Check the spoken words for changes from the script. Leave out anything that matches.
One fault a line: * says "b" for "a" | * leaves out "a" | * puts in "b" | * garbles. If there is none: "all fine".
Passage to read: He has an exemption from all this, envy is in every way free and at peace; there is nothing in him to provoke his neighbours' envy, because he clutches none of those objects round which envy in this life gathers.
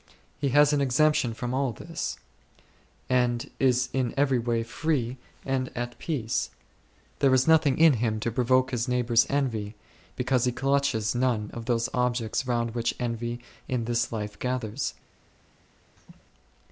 * says "and" for "envy"